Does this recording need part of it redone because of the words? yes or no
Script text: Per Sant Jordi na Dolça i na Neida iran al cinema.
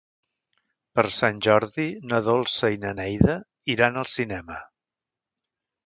no